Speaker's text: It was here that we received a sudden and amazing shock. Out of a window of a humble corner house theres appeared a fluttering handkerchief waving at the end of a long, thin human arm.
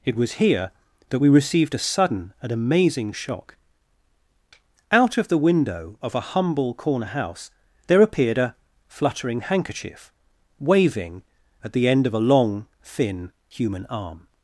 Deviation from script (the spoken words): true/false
true